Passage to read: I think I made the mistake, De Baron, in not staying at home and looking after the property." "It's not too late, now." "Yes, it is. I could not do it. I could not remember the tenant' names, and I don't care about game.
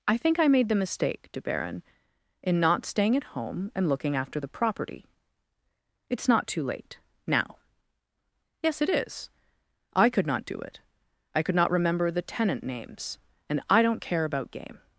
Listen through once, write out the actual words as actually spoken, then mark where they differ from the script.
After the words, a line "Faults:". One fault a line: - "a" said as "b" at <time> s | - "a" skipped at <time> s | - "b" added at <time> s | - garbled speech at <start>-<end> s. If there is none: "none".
I think I made the mistake, De Baron, in not staying at home and looking after the property." "It's not too late, now." "Yes, it is. I could not do it. I could not remember the tenant' names, and I don't care about game.
Faults:
none